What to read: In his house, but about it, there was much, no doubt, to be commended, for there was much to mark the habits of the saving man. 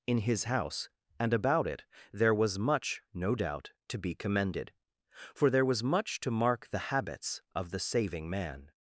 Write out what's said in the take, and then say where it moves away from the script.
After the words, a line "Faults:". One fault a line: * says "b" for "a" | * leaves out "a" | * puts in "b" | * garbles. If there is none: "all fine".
In his house, and about it, there was much, no doubt, to be commended, for there was much to mark the habits of the saving man.
Faults:
* says "and" for "but"